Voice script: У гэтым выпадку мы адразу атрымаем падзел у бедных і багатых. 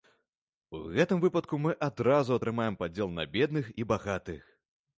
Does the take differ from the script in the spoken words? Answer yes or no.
yes